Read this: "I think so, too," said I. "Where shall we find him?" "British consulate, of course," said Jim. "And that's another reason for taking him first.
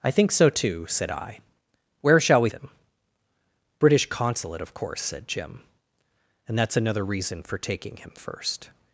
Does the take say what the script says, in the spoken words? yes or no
no